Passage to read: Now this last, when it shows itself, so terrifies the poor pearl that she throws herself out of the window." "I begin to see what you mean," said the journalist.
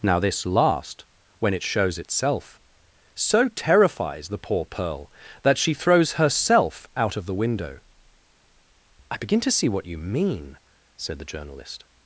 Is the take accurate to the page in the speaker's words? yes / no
yes